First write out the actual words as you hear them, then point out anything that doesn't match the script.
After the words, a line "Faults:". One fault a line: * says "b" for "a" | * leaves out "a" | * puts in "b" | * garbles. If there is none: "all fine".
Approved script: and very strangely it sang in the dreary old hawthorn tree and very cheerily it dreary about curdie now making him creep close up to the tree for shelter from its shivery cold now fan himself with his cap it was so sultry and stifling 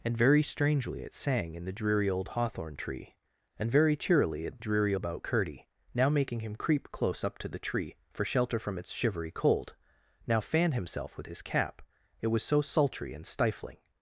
and very strangely it sang in the dreary old hawthorn tree and very cheerily it dreary about curdie now making him creep close up to the tree for shelter from its shivery cold now fan himself with his cap it was so sultry and stifling
Faults:
all fine